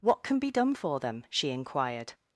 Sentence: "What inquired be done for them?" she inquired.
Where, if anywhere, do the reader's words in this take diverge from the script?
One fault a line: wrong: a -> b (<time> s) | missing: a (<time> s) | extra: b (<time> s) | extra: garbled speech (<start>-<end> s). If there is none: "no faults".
wrong: inquired -> can (0.2 s)